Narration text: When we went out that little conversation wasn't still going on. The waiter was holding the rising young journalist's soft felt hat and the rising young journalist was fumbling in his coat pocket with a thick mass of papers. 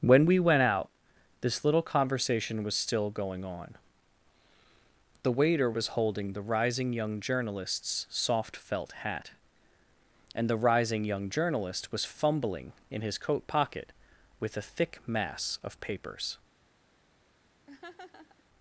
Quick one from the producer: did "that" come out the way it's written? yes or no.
no